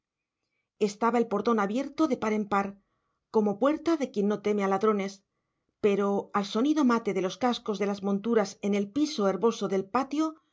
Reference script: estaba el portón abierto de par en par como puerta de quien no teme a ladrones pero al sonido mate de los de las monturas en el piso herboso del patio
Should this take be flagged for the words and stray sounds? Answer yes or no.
yes